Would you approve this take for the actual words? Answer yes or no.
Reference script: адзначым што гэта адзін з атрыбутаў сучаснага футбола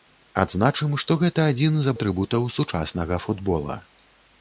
yes